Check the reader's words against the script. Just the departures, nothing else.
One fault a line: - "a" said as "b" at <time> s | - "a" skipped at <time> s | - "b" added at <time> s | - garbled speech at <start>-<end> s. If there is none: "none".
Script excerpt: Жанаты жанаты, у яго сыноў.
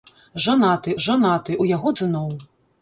none